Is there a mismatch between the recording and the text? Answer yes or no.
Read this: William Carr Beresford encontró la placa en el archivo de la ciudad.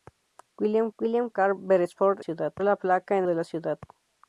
yes